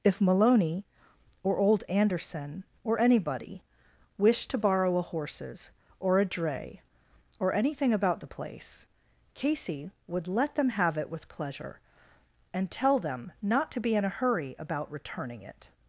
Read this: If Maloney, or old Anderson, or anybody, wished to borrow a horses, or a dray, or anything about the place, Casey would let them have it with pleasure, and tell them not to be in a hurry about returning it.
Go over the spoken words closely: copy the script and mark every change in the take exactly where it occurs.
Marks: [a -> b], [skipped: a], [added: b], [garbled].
If Maloney, or old Anderson, or anybody, wished to borrow a horses, or a dray, or anything about the place, Casey would let them have it with pleasure, and tell them not to be in a hurry about returning it.